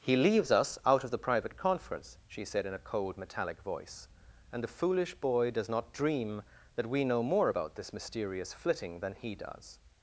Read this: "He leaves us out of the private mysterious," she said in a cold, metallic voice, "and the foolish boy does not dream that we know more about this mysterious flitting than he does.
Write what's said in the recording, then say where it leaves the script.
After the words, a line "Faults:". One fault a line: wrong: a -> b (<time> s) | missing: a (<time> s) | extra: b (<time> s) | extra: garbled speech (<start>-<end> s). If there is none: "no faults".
"He leaves us out of the private conference," she said in a cold, metallic voice, "and the foolish boy does not dream that we know more about this mysterious flitting than he does.
Faults:
wrong: mysterious -> conference (1.6 s)